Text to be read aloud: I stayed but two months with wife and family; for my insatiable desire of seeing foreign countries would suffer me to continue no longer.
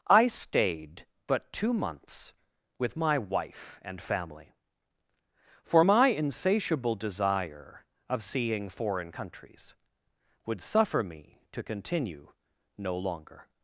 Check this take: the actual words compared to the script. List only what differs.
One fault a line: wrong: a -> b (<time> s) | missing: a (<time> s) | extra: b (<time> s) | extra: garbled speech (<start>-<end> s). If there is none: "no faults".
extra: my (3.0 s)